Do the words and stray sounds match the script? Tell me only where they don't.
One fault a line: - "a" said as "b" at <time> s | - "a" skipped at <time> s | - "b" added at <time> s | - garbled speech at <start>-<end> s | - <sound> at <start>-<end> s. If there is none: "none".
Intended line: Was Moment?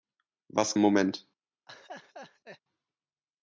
- laugh at 1.7-2.6 s